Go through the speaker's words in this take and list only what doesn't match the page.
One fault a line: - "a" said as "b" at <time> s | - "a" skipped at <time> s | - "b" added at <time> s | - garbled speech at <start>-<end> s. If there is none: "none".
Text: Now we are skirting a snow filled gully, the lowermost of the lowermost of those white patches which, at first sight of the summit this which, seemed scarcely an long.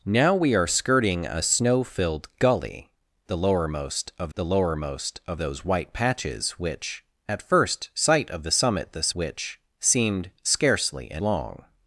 none